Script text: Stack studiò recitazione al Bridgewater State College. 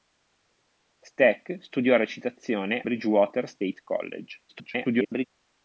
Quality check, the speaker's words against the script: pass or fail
fail